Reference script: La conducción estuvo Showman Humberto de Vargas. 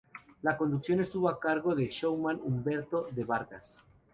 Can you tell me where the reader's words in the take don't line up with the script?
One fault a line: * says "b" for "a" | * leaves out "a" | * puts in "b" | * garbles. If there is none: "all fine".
* puts in "a cargo del"